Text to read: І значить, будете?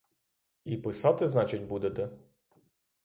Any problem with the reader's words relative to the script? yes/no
yes